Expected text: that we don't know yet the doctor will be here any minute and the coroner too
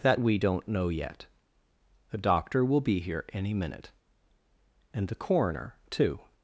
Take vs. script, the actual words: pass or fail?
pass